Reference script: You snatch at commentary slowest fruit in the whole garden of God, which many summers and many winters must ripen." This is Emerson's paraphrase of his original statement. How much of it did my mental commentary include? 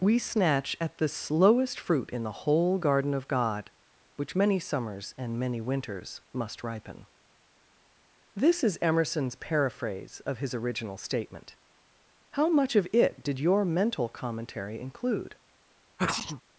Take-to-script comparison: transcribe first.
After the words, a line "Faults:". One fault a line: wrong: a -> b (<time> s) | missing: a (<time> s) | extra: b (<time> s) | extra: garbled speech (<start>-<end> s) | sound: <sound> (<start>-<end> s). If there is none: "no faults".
We snatch at the slowest fruit in the whole garden of God, which many summers and many winters must ripen." This is Emerson's paraphrase of his original statement. How much of it did your mental commentary include?
Faults:
wrong: You -> We (0.0 s)
wrong: commentary -> the (1.0 s)
wrong: my -> your (13.4 s)
sound: sneeze (16.0-16.4 s)